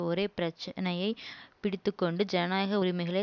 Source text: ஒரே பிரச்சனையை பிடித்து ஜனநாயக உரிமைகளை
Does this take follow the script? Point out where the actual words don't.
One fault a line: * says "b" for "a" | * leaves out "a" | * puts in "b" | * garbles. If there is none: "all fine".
* puts in "கொண்டு"